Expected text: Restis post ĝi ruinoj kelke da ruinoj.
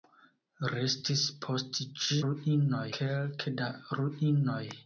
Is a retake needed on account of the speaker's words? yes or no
no